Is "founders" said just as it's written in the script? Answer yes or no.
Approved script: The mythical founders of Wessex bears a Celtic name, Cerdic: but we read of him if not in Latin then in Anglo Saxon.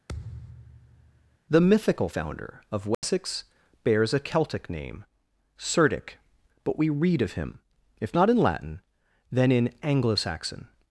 no